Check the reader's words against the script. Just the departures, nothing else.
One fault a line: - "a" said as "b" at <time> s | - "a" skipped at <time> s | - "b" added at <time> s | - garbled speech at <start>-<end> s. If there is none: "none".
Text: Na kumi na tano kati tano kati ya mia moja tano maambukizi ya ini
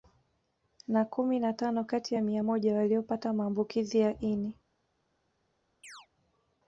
- "tano kati" skipped at 2.1 s
- "tano" said as "waliopata" at 2.7 s